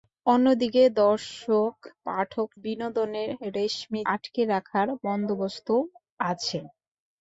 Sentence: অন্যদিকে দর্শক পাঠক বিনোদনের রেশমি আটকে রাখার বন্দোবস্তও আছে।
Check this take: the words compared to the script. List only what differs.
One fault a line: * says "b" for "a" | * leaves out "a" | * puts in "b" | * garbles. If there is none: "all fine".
all fine